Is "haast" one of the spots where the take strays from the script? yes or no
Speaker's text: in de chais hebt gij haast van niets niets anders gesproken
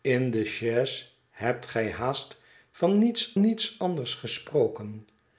no